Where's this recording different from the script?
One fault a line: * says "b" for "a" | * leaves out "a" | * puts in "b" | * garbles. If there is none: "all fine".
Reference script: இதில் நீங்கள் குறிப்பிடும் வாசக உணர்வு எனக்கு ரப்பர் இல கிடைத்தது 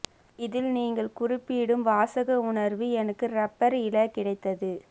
all fine